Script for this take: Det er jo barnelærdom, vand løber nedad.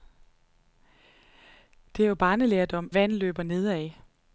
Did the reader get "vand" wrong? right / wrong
right